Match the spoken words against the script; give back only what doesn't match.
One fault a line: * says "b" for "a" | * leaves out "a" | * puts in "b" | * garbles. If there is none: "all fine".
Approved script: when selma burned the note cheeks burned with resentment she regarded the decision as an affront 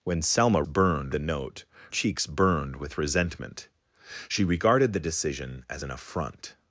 all fine